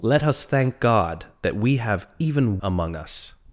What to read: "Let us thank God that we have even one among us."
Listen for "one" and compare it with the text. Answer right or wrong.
wrong